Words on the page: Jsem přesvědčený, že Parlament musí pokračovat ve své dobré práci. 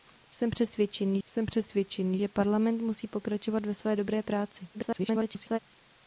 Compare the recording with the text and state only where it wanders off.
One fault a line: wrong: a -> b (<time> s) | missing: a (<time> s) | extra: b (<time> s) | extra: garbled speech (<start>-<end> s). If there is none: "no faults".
extra: jsem přesvědčený (1.3 s)
extra: garbled speech (4.7-5.6 s)